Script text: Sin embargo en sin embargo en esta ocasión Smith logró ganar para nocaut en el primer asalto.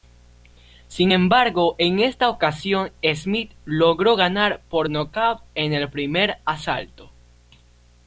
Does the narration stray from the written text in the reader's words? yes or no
yes